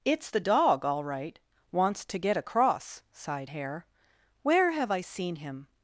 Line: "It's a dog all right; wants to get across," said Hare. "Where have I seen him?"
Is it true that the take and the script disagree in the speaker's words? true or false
true